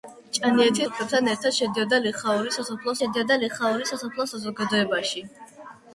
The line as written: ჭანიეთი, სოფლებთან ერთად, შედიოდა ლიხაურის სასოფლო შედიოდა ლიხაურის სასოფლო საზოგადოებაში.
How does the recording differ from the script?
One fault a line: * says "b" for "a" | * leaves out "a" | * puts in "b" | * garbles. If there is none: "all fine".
all fine